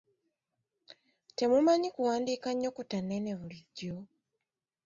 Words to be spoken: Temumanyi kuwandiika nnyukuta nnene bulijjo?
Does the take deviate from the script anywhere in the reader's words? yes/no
no